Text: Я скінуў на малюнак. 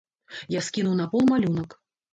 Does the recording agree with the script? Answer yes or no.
no